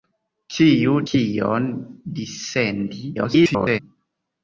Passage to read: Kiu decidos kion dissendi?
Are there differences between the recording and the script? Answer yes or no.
yes